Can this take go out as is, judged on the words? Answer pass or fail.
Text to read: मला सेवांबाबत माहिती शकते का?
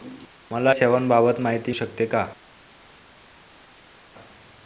pass